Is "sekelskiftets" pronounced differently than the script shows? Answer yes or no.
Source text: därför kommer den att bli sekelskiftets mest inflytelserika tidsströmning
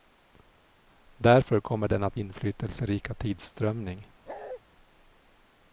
yes